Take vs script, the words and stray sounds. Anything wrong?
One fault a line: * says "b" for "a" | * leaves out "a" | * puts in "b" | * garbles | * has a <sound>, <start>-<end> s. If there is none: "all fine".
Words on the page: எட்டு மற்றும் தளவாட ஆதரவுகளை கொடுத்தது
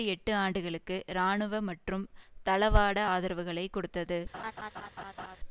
* puts in "ஆண்டுகளுக்கு இராணுவ"
* has a laugh, 4.3-5.4 s